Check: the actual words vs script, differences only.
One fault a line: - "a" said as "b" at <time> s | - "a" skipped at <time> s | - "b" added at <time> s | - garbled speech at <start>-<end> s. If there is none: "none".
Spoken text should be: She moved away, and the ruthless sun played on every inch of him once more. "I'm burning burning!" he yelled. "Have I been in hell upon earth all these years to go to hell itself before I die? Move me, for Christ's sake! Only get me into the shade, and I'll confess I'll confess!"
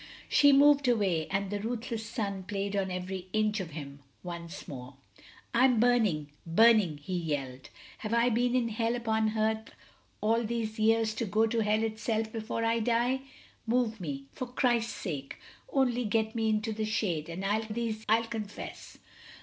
- "confess" said as "these" at 17.7 s